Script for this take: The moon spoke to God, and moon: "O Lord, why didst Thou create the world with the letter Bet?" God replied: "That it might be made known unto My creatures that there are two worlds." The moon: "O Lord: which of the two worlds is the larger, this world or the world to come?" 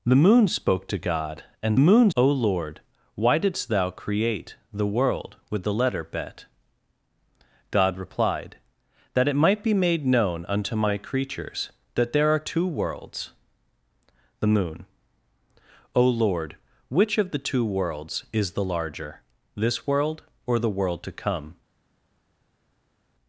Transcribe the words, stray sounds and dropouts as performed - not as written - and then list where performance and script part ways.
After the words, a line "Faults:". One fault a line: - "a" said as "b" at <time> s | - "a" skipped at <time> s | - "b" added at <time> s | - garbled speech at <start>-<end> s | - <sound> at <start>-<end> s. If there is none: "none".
The moon spoke to God, and moon: "O Lord, why didst Thou create the world with the letter Bet?" God replied: "That it might be made known unto My creatures that there are two worlds." The moon: "O Lord: which of the two worlds is the larger, this world or the world to come?"
Faults:
none